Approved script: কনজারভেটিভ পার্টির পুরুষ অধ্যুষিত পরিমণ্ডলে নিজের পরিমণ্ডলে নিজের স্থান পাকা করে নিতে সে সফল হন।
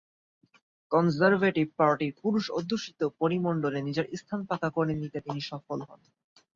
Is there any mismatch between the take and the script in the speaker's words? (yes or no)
yes